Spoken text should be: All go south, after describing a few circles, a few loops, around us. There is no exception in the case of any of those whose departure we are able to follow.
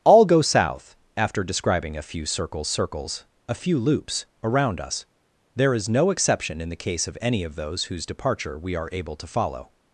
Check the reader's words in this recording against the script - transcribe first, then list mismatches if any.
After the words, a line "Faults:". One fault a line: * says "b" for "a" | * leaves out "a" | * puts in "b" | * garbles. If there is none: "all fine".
All go south, after describing a few circles circles, a few loops, around us. There is no exception in the case of any of those whose departure we are able to follow.
Faults:
* puts in "circles"